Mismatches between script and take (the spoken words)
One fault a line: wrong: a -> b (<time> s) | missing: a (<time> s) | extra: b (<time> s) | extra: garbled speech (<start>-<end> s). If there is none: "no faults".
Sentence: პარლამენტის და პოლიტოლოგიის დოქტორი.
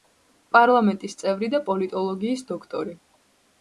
extra: წევრი (1.2 s)